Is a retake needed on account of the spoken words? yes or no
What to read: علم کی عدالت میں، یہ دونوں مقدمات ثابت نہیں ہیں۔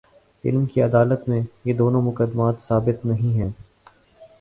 no